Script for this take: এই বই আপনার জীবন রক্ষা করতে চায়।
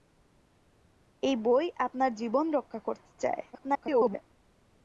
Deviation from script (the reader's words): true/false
true